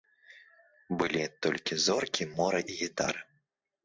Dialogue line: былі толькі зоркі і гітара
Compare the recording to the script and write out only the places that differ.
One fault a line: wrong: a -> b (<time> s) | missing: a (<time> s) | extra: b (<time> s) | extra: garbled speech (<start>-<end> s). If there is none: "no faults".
extra: мора (2.4 s)